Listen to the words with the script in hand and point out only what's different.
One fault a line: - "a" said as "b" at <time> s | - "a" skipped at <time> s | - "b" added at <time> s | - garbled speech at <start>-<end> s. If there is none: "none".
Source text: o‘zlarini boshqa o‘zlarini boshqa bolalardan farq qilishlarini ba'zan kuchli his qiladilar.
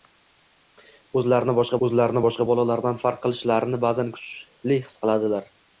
none